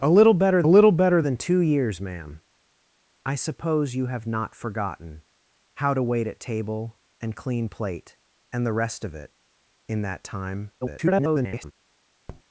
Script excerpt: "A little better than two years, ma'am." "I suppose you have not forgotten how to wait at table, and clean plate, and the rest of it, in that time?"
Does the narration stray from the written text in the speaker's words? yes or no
yes